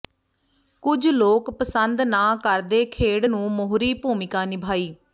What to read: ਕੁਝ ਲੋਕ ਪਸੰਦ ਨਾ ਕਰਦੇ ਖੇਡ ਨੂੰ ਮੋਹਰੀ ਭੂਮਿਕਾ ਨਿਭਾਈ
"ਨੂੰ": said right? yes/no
yes